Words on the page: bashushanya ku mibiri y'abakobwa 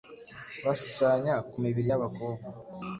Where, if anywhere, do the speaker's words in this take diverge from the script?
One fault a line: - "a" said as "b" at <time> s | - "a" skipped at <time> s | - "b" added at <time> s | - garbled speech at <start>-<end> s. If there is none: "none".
none